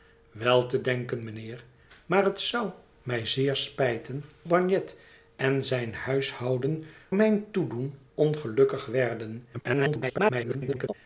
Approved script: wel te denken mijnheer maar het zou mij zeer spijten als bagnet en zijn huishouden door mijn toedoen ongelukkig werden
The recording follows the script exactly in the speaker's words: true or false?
false